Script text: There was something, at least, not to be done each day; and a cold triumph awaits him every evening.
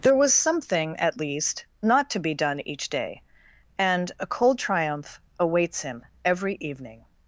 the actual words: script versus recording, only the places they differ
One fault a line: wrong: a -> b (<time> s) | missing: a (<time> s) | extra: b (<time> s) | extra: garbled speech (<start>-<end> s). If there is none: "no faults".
no faults